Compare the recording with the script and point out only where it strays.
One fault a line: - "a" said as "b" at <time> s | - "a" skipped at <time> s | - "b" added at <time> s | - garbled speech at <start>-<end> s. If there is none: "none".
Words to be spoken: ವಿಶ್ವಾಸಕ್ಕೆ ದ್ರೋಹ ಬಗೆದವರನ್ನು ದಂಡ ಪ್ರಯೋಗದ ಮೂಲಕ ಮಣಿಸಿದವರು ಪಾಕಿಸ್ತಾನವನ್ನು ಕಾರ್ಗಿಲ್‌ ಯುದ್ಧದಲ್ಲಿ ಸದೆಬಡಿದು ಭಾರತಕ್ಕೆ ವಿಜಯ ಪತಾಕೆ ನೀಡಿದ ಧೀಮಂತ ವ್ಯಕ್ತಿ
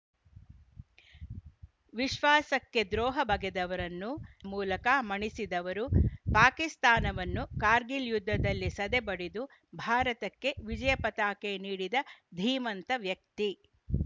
- "ದಂಡ ಪ್ರಯೋಗದ" skipped at 4.1 s